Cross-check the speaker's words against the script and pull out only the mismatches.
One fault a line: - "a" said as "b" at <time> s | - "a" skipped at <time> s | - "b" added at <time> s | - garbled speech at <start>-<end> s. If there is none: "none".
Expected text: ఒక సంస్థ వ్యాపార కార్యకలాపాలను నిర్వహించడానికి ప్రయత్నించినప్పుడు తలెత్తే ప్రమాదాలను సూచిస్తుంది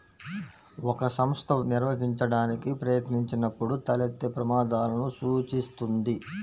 - "వ్యాపార కార్యకలాపాలను" skipped at 1.5 s